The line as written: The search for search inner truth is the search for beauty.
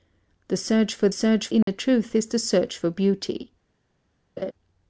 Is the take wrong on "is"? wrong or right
right